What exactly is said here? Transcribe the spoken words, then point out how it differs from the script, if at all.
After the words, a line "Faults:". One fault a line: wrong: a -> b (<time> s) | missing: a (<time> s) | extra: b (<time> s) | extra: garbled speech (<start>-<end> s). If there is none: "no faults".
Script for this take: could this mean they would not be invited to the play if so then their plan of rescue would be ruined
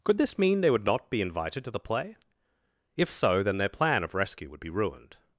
could this mean they would not be invited to the play if so then their plan of rescue would be ruined
Faults:
no faults